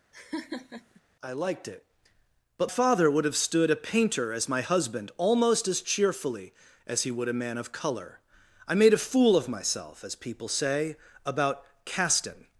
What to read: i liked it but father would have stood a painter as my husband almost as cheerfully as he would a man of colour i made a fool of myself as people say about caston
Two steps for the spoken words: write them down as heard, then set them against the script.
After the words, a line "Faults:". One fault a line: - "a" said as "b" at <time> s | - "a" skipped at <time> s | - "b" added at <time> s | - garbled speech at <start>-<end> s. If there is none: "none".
i liked it but father would have stood a painter as my husband almost as cheerfully as he would a man of colour i made a fool of myself as people say about caston
Faults:
none